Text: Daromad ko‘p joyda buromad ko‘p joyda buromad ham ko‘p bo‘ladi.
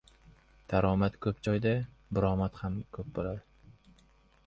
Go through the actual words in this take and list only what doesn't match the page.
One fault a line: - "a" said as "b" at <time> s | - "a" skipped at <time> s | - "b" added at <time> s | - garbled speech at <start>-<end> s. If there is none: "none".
- "ko‘p joyda buromad" skipped at 2.6 s